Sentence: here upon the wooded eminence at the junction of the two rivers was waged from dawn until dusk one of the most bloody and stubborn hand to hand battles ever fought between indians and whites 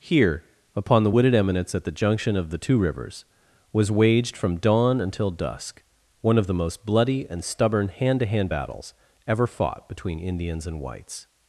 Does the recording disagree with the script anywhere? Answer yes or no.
no